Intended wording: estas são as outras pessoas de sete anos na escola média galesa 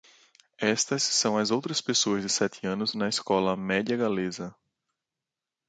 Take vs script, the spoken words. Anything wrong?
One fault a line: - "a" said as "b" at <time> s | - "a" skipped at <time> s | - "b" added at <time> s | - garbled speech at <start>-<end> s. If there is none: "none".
none